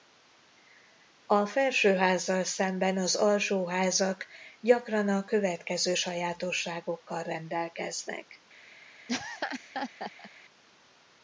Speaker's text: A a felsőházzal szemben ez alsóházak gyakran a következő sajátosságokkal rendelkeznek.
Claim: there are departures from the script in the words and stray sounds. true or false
true